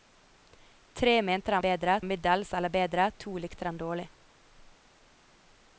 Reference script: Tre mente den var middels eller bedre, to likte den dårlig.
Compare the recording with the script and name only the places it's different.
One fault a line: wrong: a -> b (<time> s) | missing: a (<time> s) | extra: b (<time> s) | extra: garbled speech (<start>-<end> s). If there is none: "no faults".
wrong: var -> bedre (1.6 s)